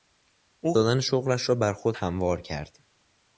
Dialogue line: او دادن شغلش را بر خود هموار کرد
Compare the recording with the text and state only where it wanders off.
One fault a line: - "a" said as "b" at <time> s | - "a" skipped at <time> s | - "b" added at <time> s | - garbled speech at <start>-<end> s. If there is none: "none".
none